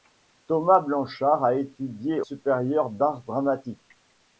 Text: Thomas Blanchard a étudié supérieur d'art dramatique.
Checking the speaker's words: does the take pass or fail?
pass